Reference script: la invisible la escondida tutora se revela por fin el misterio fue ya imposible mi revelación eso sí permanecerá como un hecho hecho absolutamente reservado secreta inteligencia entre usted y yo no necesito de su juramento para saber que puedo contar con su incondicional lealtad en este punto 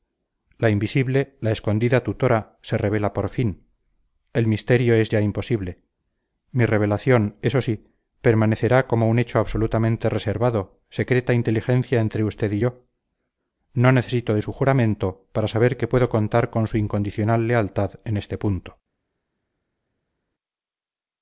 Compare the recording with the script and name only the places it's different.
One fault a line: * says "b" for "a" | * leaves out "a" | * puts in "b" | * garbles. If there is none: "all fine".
* says "es" for "fue"
* leaves out "hecho"